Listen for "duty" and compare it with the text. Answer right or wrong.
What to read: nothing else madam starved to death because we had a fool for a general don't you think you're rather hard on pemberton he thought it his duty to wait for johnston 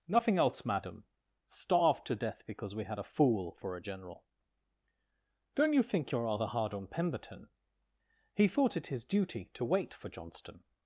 right